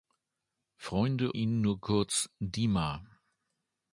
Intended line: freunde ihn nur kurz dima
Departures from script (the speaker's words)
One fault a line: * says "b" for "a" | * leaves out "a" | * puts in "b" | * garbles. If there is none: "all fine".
all fine